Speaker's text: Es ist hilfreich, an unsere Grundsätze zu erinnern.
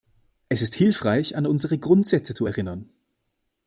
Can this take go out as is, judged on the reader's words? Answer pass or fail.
pass